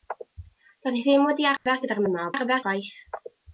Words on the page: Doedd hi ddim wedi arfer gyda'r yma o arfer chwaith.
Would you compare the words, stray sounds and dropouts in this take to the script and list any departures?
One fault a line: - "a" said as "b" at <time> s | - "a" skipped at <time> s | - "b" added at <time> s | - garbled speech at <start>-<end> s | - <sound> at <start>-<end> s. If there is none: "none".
- dropout at 1.6-1.7 s